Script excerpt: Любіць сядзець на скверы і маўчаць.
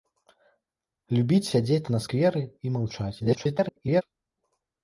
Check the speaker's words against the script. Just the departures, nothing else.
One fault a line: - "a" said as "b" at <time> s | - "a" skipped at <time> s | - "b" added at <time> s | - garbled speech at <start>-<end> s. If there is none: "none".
- garbled speech at 3.2-4.0 s